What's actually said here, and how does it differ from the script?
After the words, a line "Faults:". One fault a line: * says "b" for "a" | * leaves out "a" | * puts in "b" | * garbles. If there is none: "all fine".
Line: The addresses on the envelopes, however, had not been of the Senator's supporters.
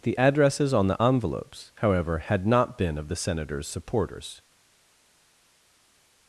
The addresses on the envelopes, however, had not been of the Senator's supporters.
Faults:
all fine